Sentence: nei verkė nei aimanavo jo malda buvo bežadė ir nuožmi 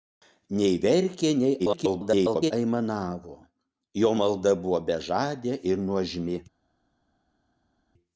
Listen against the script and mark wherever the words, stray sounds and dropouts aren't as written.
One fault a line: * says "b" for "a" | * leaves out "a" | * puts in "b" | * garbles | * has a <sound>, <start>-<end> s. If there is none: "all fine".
* garbles